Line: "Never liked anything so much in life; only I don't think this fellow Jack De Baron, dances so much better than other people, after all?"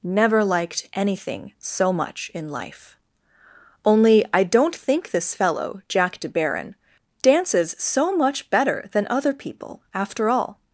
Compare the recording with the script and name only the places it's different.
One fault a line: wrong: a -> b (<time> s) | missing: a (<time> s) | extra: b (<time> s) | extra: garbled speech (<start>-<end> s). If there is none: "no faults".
no faults